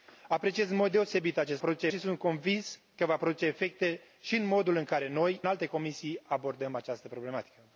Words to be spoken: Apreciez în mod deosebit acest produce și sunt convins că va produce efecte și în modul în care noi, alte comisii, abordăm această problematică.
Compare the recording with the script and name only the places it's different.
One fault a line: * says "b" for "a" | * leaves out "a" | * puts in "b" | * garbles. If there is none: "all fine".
all fine